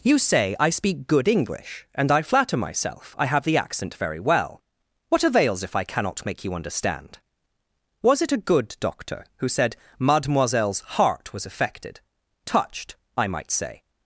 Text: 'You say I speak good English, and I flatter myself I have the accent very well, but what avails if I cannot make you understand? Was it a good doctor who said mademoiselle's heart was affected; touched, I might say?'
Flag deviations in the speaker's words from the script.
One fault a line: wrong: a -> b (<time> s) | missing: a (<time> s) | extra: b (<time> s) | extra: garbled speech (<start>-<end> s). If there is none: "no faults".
missing: but (4.6 s)